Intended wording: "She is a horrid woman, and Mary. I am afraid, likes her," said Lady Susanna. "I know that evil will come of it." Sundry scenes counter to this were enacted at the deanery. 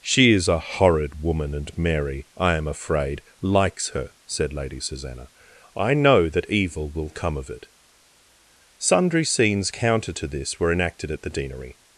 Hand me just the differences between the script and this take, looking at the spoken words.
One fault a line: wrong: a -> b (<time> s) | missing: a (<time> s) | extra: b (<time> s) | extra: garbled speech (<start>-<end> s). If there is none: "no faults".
no faults